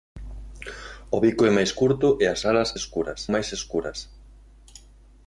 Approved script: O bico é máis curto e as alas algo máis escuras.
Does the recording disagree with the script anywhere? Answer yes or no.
yes